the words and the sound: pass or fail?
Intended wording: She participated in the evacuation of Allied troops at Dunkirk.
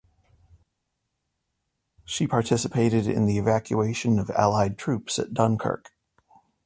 pass